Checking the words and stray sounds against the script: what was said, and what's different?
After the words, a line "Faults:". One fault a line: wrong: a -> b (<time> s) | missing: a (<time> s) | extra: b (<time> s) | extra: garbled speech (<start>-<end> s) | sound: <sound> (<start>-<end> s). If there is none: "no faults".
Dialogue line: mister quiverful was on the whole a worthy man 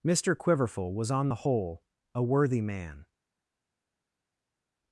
mister quiverful was on the whole a worthy man
Faults:
no faults